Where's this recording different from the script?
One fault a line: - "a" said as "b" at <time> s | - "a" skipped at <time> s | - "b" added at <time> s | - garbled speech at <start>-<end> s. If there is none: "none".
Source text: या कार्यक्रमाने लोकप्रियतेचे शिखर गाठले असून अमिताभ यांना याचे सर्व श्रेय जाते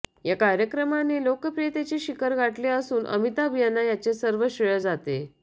none